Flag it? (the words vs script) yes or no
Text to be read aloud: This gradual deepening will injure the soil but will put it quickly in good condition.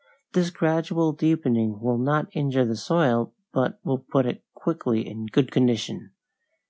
yes